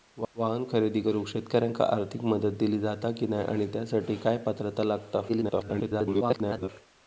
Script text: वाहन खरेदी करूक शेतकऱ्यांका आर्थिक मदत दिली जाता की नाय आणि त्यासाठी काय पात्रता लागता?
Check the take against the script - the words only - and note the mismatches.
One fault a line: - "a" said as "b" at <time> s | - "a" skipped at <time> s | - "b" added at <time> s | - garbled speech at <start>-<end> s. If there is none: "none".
- garbled speech at 5.3-6.7 s